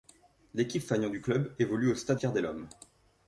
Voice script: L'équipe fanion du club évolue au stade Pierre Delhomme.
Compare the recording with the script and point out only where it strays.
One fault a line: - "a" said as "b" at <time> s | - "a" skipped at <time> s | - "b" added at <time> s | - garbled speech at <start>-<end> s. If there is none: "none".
none